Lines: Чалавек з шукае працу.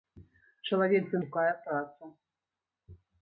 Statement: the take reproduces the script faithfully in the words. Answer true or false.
true